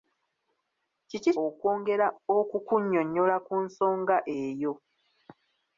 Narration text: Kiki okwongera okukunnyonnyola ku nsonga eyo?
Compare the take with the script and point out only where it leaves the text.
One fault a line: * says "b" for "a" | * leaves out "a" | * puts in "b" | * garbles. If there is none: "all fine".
all fine